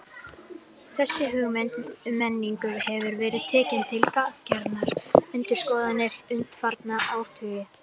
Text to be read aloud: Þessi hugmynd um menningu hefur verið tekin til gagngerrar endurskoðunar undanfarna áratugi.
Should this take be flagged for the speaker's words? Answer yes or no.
no